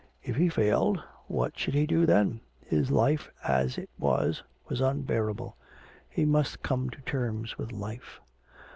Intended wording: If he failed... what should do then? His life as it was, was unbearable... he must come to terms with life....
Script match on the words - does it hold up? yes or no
no